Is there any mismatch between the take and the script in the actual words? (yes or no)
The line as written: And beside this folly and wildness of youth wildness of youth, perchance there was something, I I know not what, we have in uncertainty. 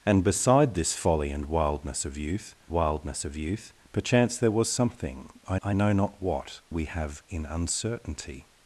no